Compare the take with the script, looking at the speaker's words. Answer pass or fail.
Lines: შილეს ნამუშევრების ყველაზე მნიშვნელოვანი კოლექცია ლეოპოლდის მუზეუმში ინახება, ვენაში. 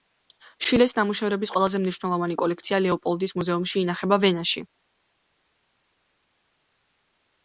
pass